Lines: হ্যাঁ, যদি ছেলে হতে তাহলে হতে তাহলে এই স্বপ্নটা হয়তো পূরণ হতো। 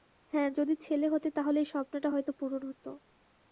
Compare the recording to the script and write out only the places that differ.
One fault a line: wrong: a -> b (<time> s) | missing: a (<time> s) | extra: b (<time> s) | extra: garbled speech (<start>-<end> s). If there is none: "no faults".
missing: হতে তাহলে (1.6 s)